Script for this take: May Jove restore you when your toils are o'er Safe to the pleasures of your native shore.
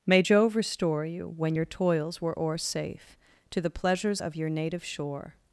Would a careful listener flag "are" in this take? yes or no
yes